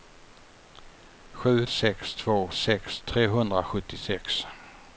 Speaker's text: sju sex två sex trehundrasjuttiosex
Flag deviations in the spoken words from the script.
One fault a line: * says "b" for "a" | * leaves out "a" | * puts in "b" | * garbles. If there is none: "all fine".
all fine